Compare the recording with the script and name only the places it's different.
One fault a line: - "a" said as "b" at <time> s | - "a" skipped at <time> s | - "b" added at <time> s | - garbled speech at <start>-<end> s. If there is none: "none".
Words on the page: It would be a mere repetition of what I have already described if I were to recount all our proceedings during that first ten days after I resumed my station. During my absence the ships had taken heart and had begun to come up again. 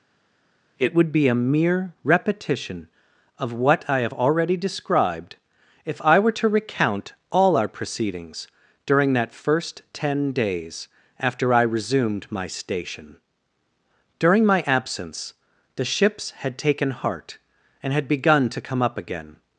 none